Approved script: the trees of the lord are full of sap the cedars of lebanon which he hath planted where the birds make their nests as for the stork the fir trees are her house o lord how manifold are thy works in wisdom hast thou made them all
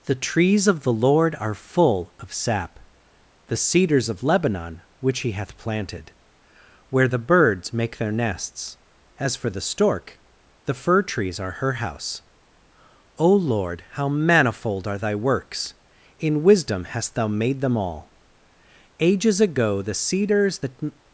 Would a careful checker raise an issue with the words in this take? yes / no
yes